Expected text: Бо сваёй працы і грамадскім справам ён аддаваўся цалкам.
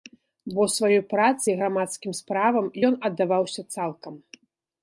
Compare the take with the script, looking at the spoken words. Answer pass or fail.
pass